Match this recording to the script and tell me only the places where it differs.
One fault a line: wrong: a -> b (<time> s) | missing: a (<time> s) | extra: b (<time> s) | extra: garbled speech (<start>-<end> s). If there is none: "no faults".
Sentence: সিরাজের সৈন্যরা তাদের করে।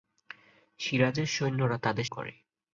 no faults